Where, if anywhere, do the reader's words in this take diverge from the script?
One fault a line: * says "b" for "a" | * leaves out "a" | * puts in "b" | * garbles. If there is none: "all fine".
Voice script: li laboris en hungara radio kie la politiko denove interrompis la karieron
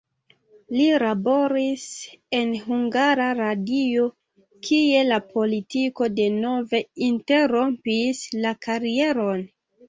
all fine